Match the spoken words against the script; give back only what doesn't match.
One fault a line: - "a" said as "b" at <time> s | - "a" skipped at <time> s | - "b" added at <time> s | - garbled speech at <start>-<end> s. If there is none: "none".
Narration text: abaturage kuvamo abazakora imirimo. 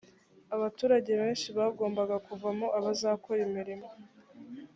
- "benshi bagombaga" added at 1.2 s